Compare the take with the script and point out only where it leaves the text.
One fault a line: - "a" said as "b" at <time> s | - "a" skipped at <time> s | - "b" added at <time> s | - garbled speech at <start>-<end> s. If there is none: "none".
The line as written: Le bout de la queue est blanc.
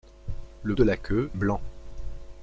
- "bout" skipped at 0.8 s
- "est" skipped at 1.3 s